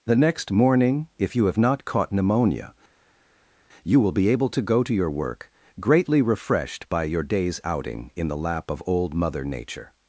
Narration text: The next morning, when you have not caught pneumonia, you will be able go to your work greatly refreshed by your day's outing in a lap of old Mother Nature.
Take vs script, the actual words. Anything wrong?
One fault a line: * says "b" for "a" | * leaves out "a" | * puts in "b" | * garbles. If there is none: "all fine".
* says "if" for "when"
* puts in "to"
* says "the" for "a"